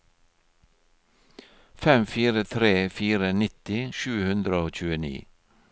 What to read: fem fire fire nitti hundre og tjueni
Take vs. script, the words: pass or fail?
fail